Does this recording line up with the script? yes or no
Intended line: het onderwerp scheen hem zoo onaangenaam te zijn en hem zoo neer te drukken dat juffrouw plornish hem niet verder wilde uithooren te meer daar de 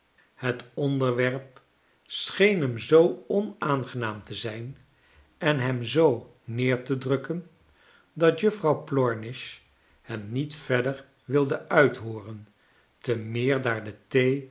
yes